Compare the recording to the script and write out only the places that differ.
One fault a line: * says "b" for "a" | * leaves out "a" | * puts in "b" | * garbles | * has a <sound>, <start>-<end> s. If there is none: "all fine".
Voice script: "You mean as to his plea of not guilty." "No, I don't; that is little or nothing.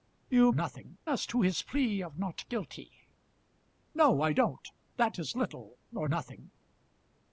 * says "nothing" for "mean"